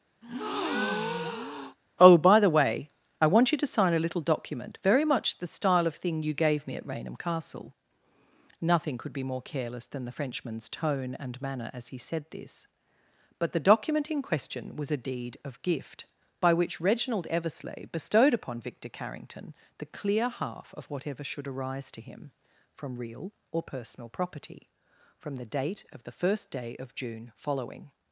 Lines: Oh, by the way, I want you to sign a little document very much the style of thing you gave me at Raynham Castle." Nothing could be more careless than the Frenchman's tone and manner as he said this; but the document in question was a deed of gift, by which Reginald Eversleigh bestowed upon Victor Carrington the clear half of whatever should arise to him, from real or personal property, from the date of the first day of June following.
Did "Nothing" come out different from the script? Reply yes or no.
no